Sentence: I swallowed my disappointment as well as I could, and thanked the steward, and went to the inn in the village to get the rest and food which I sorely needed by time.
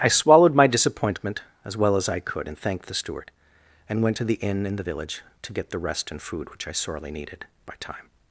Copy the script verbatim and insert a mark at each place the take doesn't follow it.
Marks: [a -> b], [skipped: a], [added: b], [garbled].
I swallowed my disappointment as well as I could, and thanked the steward, and went to the inn in the village to get the rest and food which I sorely needed by time.